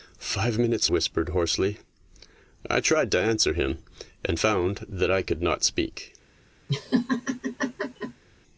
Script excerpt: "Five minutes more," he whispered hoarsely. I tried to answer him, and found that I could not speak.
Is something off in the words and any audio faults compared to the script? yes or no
yes